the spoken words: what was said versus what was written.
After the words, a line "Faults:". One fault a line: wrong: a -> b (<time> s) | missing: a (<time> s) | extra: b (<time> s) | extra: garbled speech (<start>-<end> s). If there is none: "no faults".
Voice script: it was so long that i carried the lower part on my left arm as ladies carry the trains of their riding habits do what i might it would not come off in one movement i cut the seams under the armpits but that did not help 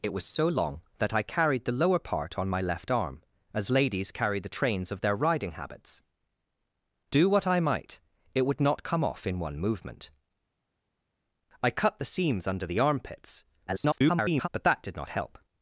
it was so long that i carried the lower part on my left arm as ladies carry the trains of their riding habits do what i might it would not come off in one movement i cut the seams under the armpits [garbled] but that did not help
Faults:
extra: garbled speech (13.7-14.5 s)